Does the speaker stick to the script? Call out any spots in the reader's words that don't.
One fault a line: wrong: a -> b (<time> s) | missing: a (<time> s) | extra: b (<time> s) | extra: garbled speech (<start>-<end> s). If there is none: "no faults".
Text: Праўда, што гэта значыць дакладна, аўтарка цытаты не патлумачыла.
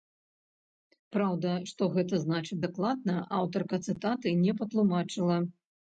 no faults